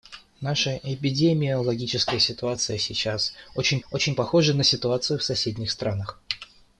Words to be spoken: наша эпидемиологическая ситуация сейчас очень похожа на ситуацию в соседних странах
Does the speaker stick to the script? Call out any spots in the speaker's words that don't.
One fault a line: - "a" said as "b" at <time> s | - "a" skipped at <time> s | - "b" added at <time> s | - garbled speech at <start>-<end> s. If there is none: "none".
- "очень" added at 3.9 s